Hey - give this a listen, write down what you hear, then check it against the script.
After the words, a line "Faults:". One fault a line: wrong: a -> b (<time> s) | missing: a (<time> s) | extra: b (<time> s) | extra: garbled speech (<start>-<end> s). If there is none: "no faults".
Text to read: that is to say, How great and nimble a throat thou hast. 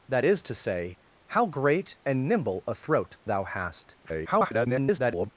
that is to say, How great and nimble a throat thou hast. [garbled]
Faults:
extra: garbled speech (4.0-5.3 s)